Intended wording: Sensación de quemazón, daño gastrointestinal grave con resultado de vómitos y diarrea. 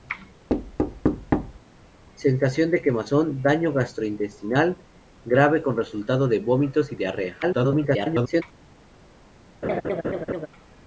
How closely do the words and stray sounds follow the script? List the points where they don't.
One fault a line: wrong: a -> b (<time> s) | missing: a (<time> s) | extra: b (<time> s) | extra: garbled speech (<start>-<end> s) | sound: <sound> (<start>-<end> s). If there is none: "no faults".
sound: thud (0.5-1.6 s)
extra: garbled speech (7.4-8.4 s)
sound: laugh (9.6-10.5 s)